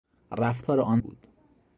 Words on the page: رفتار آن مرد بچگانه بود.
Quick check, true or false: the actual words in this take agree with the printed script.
false